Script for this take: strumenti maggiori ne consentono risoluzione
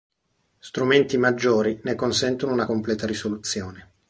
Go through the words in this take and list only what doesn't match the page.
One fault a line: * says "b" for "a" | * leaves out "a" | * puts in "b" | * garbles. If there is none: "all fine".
* puts in "una completa"